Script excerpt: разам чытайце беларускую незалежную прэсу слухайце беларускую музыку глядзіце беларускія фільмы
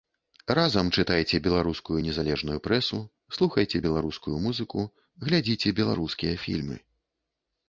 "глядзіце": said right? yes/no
yes